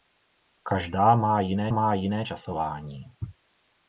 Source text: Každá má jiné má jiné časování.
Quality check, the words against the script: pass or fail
pass